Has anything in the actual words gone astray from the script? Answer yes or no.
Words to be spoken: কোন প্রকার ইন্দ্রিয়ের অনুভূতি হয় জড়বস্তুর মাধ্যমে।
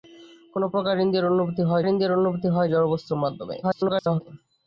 yes